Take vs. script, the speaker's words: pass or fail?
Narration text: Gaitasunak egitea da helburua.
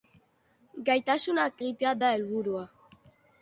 pass